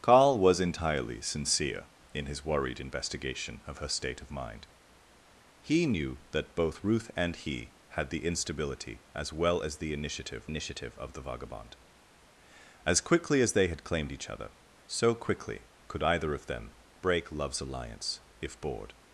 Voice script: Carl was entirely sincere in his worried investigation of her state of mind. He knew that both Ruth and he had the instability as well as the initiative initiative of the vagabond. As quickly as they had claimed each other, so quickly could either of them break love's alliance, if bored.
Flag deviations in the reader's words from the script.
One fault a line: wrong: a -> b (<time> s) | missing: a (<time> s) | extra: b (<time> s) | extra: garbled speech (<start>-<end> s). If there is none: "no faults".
no faults